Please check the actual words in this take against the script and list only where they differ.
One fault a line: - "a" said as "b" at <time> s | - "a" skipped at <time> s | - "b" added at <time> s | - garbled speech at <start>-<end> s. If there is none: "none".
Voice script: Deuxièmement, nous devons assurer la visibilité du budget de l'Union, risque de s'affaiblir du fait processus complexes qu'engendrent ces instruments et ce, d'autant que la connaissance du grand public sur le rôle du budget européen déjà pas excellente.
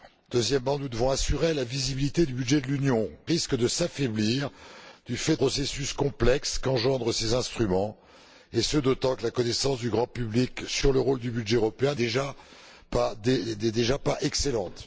none